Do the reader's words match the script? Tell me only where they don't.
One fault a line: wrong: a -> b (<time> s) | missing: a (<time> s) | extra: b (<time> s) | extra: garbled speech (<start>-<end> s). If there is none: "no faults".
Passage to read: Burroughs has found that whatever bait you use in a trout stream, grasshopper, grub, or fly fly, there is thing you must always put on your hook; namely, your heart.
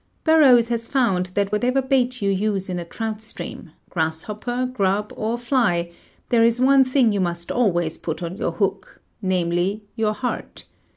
missing: fly (5.9 s)
extra: one (6.6 s)